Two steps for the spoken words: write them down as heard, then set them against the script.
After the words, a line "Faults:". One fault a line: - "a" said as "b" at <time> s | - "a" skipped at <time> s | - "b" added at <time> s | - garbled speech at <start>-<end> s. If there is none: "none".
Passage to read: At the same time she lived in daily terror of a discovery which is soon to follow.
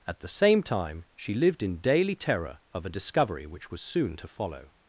At the same time she lived in daily terror of a discovery which was soon to follow.
Faults:
- "is" said as "was" at 3.7 s